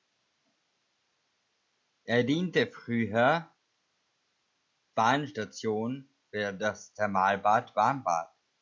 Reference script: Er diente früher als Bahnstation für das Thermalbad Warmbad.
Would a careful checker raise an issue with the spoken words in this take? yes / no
yes